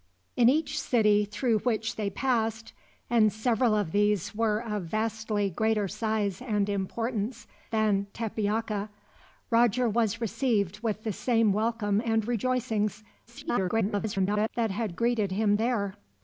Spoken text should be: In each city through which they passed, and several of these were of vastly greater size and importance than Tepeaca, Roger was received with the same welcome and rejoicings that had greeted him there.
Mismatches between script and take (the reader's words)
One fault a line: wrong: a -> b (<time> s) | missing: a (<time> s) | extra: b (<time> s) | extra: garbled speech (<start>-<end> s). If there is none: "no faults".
extra: garbled speech (13.3-14.5 s)